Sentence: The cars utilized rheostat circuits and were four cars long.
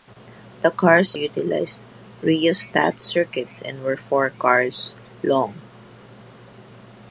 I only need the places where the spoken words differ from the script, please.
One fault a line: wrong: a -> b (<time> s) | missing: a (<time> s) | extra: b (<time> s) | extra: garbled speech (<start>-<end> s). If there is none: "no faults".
no faults